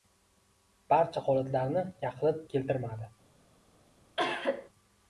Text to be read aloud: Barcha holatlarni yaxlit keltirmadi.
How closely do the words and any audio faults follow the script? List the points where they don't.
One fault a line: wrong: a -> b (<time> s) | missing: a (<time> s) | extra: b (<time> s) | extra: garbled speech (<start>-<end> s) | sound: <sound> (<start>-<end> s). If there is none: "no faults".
sound: cough (4.2-4.7 s)